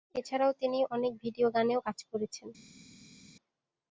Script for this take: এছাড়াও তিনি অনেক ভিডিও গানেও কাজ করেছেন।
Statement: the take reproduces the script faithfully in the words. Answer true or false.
true